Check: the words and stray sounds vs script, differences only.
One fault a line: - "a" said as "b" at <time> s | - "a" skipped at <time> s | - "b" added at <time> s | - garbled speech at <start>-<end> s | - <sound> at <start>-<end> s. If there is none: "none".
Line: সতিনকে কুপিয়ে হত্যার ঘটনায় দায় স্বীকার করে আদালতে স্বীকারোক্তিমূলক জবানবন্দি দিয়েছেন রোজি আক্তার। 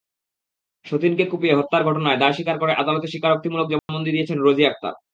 - dropout at 3.8-3.9 s